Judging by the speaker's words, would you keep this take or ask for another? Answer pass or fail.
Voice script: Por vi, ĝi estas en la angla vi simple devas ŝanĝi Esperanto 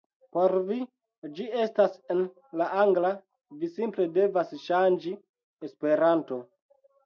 pass